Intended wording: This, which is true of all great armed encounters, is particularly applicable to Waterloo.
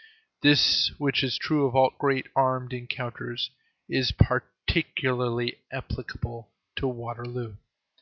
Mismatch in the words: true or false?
false